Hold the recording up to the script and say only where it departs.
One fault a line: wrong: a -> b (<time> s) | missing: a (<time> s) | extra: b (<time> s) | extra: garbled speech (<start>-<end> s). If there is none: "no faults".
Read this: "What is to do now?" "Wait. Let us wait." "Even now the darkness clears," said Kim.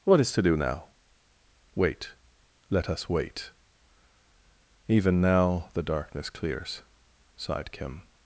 wrong: said -> sighed (7.3 s)